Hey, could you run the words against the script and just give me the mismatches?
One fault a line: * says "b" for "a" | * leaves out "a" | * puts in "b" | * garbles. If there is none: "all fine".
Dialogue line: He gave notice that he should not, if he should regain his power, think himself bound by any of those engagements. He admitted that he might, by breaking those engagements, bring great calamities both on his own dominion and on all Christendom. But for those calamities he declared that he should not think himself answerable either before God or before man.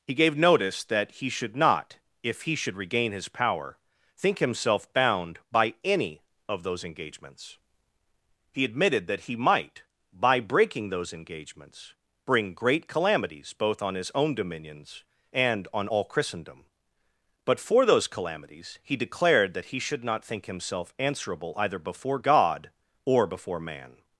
* says "dominions" for "dominion"